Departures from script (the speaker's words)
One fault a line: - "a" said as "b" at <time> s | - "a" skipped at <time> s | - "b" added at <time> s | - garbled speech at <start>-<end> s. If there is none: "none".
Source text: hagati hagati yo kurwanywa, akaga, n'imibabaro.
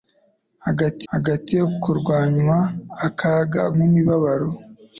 none